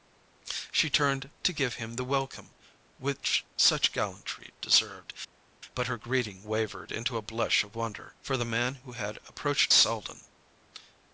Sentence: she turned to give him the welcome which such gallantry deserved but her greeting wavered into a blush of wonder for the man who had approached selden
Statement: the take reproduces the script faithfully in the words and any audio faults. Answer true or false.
true